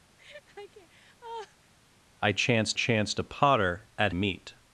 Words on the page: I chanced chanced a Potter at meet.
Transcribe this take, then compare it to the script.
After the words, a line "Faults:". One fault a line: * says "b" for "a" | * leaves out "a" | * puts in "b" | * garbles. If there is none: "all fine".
I chanced chanced a Potter at meet.
Faults:
all fine